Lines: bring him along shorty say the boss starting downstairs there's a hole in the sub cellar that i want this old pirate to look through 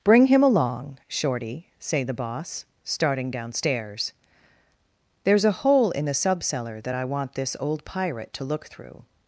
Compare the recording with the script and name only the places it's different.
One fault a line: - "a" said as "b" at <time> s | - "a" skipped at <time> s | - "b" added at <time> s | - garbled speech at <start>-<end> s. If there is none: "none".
none